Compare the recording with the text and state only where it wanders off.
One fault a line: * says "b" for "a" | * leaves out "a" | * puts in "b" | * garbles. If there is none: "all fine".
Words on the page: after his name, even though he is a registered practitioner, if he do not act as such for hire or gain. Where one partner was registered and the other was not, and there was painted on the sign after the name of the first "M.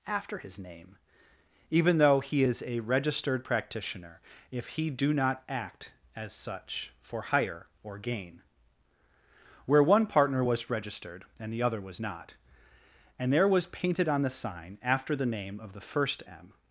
all fine